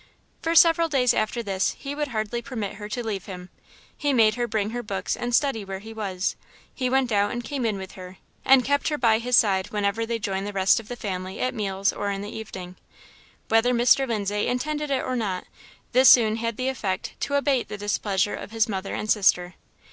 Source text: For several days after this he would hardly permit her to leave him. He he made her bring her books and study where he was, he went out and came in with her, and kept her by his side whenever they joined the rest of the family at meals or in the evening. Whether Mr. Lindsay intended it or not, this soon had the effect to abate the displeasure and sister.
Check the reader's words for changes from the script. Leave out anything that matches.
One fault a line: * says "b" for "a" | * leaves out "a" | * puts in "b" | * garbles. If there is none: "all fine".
* leaves out "he"
* puts in "of his mother"